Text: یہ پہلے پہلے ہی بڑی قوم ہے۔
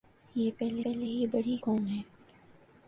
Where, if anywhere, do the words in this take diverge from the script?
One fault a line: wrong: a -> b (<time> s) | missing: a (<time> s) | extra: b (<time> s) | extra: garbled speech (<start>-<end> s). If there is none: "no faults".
no faults